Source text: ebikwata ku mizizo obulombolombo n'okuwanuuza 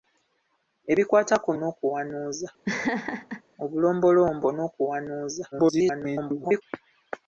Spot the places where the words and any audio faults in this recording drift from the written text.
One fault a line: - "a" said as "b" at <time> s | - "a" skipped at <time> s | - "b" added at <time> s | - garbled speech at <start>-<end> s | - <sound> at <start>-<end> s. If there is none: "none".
- "mizizo" said as "n'okuwanuuza" at 1.6 s
- laugh at 2.7-3.4 s
- garbled speech at 5.5-6.6 s